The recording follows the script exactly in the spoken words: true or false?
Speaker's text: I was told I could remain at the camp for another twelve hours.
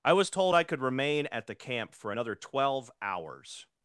true